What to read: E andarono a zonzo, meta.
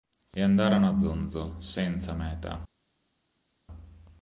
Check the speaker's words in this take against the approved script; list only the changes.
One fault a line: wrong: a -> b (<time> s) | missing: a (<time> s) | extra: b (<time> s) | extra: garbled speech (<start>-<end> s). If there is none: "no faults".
extra: senza (1.6 s)